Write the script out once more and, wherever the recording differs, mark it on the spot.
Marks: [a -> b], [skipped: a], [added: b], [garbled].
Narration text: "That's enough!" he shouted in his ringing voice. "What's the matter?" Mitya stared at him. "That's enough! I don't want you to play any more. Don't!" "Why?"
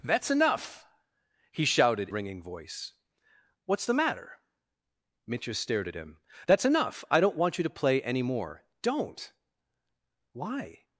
"That's enough!" he shouted [skipped: in his] ringing voice. "What's the matter?" Mitya stared at him. "That's enough! I don't want you to play any more. Don't!" "Why?"